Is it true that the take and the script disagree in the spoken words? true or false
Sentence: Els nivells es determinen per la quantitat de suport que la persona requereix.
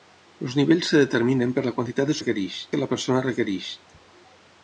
true